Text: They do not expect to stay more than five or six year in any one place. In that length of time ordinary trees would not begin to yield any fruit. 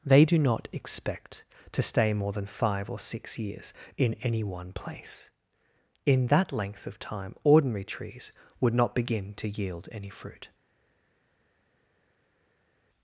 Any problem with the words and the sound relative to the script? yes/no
yes